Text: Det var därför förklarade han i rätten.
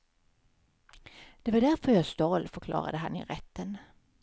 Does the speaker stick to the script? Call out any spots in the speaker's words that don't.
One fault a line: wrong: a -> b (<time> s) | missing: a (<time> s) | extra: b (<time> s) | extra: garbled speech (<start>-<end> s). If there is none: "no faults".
extra: jag stal (1.9 s)